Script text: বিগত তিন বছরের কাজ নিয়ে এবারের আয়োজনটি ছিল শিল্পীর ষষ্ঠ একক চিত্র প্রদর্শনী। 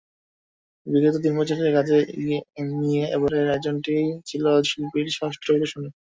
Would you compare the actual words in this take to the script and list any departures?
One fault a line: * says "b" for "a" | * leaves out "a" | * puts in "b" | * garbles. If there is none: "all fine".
* leaves out "একক চিত্র"